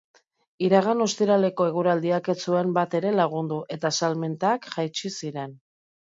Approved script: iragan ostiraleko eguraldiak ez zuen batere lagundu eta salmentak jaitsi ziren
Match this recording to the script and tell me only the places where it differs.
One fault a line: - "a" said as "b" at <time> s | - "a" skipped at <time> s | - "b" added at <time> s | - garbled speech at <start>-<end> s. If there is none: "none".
none